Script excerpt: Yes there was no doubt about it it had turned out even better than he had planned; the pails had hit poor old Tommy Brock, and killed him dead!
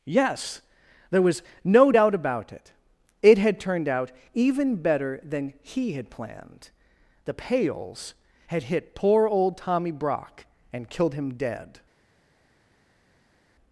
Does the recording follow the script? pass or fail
pass